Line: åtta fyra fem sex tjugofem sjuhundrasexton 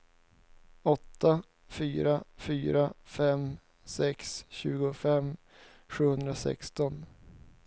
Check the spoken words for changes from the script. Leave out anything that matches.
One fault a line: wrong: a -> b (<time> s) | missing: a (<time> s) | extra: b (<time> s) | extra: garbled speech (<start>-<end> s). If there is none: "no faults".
extra: fyra (2.4 s)